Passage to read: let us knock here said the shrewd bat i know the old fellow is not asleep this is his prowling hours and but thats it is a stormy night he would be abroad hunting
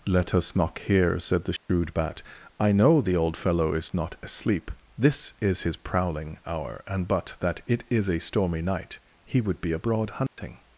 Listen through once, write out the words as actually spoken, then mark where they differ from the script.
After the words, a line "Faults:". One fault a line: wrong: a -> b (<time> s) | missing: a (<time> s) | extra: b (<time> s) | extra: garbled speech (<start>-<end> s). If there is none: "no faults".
let us knock here said the shrewd bat i know the old fellow is not asleep this is his prowling hour and but that it is a stormy night he would be abroad hunting
Faults:
wrong: hours -> hour (6.5 s)
wrong: thats -> that (7.4 s)